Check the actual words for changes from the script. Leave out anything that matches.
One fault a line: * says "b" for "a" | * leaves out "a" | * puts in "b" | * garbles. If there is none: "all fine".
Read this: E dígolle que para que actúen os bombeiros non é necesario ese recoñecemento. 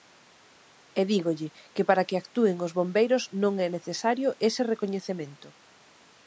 all fine